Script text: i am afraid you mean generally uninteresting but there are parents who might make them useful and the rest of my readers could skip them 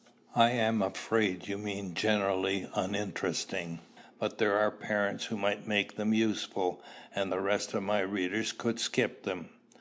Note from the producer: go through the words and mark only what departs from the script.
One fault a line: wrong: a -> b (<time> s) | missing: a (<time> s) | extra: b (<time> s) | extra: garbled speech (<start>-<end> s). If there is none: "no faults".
no faults